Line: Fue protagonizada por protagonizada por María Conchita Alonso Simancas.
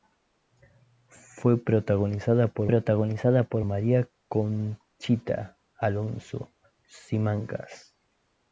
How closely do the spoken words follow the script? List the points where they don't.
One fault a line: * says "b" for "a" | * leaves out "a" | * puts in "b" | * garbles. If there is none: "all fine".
all fine